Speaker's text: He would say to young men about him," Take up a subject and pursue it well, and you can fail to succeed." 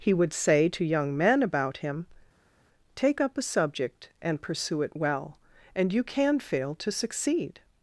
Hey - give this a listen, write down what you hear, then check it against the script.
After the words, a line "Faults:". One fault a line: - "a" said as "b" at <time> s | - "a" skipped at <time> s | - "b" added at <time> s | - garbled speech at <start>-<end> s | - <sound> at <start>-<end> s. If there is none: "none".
He would say to young men about him," Take up a subject and pursue it well, and you can fail to succeed."
Faults:
none